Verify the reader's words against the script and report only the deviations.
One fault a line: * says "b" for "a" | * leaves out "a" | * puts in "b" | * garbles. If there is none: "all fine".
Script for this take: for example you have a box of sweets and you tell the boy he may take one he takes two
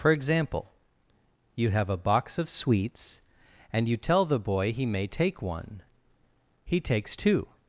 all fine